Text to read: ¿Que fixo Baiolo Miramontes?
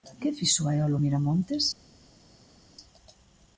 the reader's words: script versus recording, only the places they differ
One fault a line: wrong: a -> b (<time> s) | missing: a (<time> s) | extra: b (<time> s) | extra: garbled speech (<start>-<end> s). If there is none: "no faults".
no faults